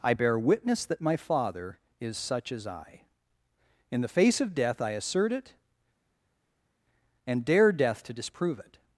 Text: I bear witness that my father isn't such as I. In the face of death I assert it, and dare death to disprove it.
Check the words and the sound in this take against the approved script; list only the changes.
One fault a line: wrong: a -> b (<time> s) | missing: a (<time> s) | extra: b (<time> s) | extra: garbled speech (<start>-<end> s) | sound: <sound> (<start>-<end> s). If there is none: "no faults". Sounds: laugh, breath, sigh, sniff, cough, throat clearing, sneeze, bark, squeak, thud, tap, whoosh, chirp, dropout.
wrong: isn't -> is (2.0 s)